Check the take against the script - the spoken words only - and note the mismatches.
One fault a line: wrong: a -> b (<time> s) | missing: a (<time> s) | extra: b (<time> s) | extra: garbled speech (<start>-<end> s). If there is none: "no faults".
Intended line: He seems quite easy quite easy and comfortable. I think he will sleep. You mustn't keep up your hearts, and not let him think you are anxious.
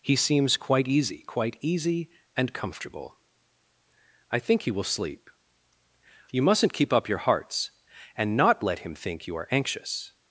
no faults